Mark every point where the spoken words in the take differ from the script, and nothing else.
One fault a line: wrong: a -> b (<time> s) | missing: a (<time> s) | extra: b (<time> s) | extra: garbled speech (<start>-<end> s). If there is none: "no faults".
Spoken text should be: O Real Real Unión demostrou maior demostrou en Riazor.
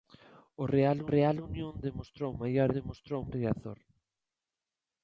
no faults